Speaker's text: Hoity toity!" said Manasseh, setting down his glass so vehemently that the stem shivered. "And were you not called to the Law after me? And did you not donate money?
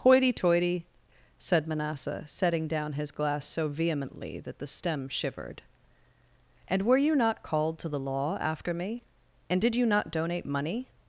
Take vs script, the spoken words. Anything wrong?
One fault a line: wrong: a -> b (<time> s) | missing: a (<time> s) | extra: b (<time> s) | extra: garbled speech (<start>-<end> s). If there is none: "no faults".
no faults